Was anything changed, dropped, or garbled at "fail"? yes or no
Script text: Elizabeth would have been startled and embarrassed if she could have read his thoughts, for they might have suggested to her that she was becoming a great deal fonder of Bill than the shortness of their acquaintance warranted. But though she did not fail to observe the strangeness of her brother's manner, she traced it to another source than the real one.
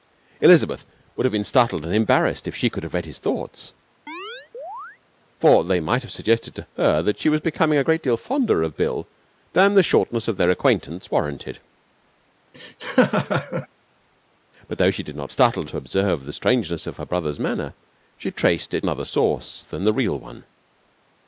yes